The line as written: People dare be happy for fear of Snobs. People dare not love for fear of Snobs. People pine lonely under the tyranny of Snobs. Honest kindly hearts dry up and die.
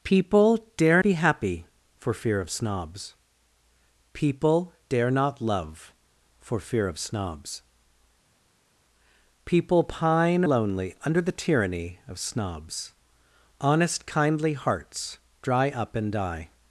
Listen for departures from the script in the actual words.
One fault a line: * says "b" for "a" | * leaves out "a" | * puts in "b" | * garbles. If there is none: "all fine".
all fine